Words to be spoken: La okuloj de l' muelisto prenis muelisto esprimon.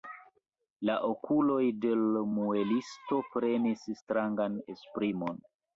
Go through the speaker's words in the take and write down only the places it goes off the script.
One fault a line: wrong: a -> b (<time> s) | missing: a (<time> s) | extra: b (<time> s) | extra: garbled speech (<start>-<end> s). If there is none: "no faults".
wrong: muelisto -> strangan (4.0 s)